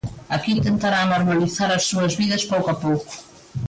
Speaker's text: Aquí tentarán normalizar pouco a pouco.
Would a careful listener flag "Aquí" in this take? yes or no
no